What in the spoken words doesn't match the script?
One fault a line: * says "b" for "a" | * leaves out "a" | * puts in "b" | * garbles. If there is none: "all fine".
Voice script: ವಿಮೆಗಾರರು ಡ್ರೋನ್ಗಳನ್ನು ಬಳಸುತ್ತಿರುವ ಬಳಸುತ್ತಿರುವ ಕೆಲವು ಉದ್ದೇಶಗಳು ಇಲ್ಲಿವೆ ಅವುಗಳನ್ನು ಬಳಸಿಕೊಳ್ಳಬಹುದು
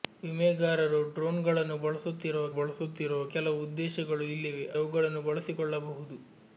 all fine